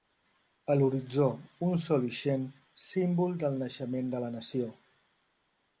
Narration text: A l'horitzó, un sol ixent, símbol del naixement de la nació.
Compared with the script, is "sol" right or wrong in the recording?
right